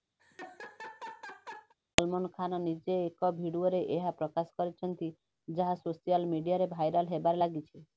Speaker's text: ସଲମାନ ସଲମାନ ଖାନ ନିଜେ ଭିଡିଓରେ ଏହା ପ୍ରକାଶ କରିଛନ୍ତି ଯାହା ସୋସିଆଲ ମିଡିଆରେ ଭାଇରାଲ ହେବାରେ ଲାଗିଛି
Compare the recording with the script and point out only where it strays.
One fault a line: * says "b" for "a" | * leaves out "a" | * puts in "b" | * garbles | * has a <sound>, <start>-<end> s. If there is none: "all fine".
* has a laugh, 0.2-1.7 s
* leaves out "ସଲମାନ"
* puts in "ଏକ"